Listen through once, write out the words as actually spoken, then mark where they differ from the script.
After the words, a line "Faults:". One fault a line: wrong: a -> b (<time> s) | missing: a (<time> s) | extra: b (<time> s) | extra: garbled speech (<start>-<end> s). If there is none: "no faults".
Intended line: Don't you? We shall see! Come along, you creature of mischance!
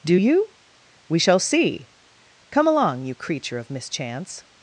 Do you? We shall see! Come along, you creature of mischance!
Faults:
wrong: Don't -> Do (0.0 s)